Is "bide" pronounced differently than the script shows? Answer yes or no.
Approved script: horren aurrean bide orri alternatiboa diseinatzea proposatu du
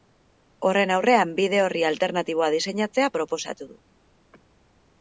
no